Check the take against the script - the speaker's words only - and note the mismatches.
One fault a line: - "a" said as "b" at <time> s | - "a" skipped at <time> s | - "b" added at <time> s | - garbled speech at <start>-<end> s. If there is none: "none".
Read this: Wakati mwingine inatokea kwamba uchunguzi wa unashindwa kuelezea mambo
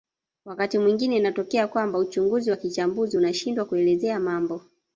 - "kichambuzi" added at 2.6 s